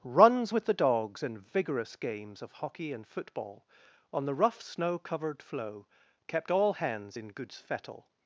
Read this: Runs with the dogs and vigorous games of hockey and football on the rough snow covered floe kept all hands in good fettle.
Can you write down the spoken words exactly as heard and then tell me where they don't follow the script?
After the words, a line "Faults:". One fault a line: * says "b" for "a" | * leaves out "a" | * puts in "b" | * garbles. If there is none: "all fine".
Runs with the dogs and vigorous games of hockey and football on the rough snow covered floe kept all hands in goods fettle.
Faults:
* says "goods" for "good"